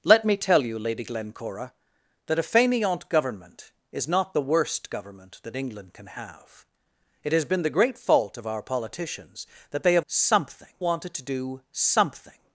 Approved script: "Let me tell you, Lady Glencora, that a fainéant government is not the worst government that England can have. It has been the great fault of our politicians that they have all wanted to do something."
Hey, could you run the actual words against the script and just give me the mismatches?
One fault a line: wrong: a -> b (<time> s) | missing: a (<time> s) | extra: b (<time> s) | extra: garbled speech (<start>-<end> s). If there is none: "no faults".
wrong: all -> something (10.1 s)